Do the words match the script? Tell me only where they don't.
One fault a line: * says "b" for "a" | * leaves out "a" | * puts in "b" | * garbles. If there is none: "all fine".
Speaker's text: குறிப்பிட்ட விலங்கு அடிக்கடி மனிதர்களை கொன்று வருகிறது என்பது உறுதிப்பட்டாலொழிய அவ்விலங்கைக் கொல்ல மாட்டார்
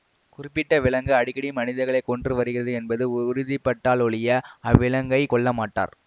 all fine